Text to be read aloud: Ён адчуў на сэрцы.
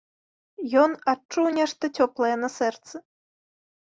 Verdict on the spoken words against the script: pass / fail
fail